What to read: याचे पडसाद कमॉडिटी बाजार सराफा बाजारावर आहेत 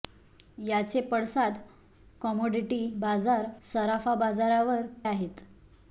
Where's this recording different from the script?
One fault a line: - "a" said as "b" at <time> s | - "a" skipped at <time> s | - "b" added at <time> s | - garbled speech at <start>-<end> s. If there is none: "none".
none